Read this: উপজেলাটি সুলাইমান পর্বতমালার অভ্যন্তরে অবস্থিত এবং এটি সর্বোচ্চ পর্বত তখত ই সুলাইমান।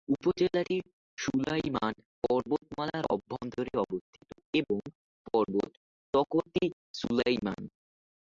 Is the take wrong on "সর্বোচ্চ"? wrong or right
wrong